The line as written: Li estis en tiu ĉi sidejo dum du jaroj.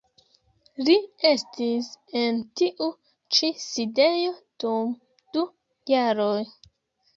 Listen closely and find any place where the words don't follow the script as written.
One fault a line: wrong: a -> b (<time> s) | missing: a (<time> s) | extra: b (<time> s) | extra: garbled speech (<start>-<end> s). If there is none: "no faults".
no faults